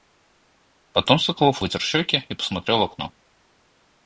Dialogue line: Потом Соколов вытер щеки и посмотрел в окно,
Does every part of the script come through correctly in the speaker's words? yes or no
yes